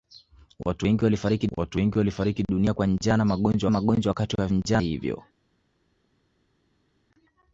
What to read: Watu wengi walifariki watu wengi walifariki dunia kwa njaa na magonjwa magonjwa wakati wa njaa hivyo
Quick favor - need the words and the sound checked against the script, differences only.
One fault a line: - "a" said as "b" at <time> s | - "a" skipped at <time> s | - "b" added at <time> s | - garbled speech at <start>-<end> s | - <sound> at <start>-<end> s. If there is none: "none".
none